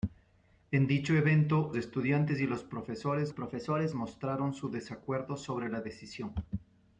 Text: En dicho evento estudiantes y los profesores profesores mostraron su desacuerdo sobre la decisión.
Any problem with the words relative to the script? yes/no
no